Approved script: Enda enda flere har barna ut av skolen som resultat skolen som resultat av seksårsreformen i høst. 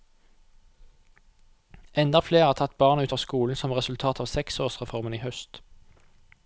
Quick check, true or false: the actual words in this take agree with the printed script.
false